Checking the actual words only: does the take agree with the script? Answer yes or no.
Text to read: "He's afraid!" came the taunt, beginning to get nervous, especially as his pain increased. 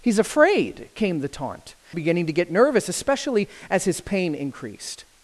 yes